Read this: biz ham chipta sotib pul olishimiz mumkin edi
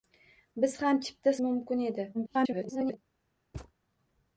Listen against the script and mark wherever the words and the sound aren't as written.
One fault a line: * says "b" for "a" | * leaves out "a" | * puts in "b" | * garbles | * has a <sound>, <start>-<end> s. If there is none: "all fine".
* leaves out "sotib pul olishimiz"
* garbles
* has a thud, 3.5-3.7 s